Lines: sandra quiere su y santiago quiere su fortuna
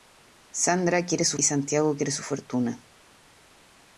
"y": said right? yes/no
yes